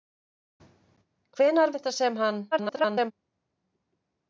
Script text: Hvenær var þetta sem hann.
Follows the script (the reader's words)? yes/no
no